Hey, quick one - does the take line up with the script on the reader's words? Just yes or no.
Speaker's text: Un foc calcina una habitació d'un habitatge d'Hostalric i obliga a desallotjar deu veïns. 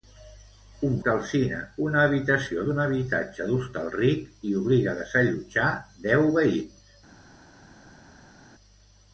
no